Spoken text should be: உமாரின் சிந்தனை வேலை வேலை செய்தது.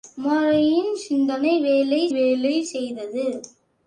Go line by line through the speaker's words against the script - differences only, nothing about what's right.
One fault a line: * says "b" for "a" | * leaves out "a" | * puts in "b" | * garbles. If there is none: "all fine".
all fine